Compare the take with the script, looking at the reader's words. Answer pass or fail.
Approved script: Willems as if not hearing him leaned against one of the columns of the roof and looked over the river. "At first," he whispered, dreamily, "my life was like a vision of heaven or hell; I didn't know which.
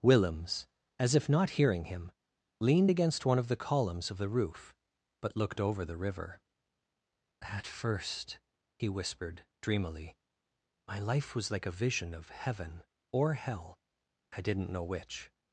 fail